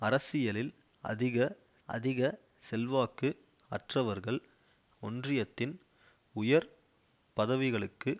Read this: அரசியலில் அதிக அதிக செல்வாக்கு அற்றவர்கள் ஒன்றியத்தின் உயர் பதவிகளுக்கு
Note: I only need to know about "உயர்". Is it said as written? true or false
true